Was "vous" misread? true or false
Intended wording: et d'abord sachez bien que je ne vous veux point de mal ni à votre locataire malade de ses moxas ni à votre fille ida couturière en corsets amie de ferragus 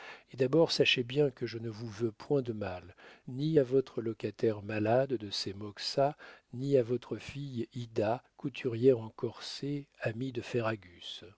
false